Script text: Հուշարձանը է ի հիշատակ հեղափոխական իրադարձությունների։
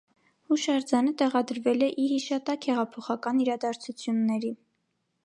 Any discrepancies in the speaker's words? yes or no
yes